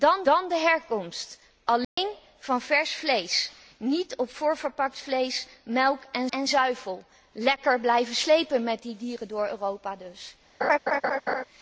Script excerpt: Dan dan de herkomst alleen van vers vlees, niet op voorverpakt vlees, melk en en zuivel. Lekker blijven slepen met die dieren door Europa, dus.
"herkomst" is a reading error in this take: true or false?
false